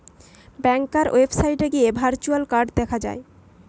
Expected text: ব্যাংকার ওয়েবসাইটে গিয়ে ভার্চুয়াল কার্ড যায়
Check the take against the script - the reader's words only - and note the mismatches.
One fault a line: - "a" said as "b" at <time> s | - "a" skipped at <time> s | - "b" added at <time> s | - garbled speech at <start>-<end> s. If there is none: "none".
- "দেখা" added at 2.8 s